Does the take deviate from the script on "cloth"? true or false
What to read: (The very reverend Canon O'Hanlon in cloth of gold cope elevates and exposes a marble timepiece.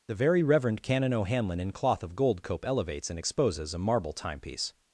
false